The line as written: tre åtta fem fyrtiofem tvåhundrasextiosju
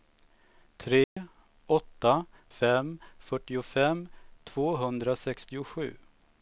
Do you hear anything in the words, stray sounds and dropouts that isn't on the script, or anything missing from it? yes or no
yes